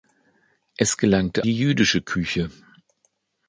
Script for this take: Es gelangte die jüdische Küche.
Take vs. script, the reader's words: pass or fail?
pass